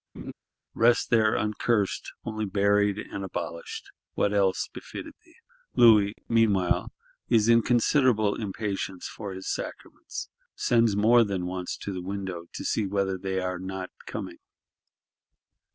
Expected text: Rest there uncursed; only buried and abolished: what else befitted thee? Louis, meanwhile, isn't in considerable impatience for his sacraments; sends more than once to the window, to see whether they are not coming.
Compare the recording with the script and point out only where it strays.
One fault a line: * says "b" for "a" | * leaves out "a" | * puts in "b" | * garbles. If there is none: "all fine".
* says "is" for "isn't"